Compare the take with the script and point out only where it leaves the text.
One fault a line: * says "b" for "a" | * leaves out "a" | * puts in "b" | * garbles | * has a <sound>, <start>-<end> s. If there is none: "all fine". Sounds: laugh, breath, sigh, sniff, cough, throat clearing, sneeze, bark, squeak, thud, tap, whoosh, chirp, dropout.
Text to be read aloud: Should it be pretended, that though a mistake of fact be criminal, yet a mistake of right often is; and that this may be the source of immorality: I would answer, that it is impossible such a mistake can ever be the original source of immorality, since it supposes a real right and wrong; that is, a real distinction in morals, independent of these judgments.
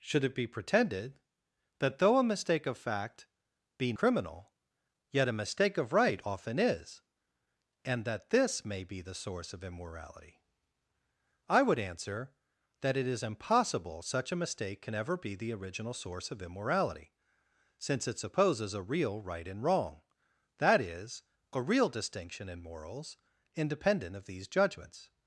all fine